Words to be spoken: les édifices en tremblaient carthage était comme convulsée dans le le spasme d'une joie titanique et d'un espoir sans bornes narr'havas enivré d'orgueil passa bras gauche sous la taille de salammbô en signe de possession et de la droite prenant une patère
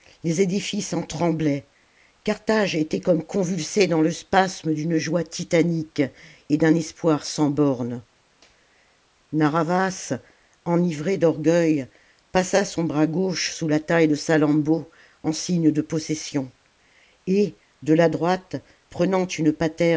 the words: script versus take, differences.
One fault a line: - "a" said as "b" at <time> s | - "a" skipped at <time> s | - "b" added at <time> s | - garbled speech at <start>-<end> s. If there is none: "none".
- "le" skipped at 4.1 s
- "son" added at 12.7 s